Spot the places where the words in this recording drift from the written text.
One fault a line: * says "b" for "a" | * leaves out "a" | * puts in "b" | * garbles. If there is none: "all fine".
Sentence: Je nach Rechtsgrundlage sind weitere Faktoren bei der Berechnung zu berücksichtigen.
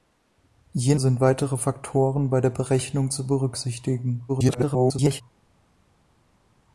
* leaves out "nach Rechtsgrundlage"
* garbles